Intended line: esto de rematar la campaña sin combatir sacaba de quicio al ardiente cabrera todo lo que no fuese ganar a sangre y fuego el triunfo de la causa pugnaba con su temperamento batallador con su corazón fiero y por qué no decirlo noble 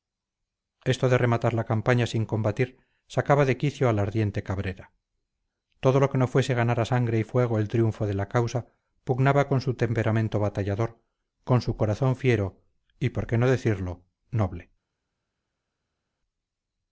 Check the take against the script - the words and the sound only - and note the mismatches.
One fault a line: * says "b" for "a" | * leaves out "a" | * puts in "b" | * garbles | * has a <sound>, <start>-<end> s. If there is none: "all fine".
all fine